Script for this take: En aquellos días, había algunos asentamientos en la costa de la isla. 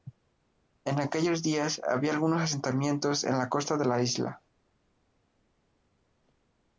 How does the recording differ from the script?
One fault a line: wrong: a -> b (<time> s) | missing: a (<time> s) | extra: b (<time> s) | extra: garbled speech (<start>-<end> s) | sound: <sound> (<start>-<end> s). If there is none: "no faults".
no faults